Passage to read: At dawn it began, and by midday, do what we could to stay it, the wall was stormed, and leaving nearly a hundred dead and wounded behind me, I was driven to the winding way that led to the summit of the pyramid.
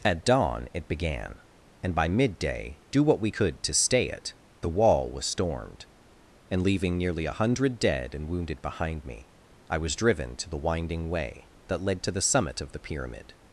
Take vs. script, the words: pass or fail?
pass